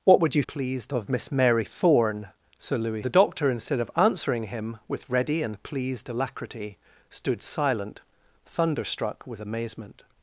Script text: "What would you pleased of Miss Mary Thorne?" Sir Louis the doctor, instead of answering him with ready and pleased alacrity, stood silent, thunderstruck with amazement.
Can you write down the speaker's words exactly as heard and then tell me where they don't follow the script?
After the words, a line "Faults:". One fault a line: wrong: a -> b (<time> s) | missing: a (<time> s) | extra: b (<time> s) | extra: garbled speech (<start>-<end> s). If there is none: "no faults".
"What would you pleased of Miss Mary Thorne?" Sir Louis the doctor, instead of answering him with ready and pleased alacrity, stood silent, thunderstruck with amazement.
Faults:
no faults